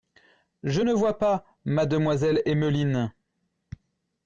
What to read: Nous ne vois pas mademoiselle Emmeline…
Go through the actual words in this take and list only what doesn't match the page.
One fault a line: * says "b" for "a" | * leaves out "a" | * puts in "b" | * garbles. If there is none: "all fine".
* says "Je" for "Nous"